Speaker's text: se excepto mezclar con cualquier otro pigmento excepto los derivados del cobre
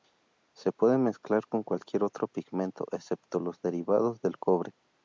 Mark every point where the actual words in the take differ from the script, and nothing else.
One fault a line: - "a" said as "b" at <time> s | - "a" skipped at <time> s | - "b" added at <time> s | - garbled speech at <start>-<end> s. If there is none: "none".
- "excepto" said as "puede" at 0.7 s